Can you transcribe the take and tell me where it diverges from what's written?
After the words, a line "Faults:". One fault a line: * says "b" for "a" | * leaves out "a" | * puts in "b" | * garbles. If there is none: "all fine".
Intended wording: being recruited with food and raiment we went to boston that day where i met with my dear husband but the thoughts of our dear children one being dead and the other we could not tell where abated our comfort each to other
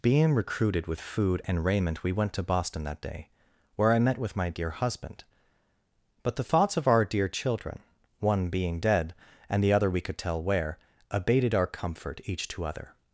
being recruited with food and raiment we went to boston that day where i met with my dear husband but the thoughts of our dear children one being dead and the other we could tell where abated our comfort each to other
Faults:
* leaves out "not"